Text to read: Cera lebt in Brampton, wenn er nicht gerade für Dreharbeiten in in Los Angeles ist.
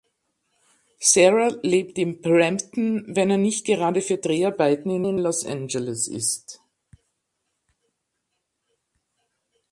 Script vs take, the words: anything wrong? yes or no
no